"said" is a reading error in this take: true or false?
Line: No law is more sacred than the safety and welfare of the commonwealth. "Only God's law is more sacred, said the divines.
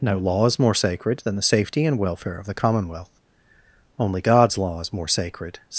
true